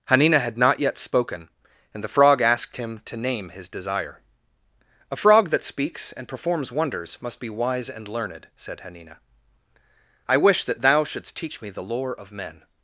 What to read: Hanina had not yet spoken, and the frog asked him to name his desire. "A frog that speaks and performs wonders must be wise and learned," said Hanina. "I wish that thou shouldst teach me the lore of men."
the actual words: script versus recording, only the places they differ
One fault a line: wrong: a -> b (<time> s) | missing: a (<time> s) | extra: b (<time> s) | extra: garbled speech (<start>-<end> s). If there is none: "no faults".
no faults